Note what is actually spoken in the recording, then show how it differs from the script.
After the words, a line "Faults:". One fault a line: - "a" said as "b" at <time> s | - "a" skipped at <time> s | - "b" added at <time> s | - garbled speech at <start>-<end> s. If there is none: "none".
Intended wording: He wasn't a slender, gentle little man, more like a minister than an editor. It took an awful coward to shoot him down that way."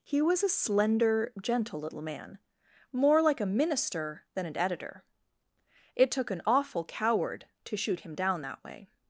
He was a slender, gentle little man, more like a minister than an editor. It took an awful coward to shoot him down that way."
Faults:
- "wasn't" said as "was" at 0.2 s